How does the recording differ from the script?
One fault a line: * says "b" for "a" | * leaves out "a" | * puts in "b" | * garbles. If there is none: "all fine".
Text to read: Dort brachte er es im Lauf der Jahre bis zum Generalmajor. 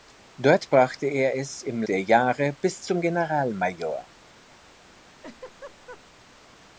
* leaves out "Lauf"